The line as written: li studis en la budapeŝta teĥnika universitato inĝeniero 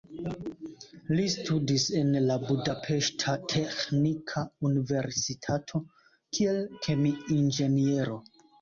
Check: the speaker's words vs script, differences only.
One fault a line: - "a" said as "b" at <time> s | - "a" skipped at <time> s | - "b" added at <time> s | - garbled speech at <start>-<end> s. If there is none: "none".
- "kiel kemi" added at 6.4 s